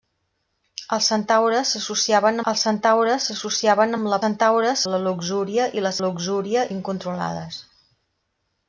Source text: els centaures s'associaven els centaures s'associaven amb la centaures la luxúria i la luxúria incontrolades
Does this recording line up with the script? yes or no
yes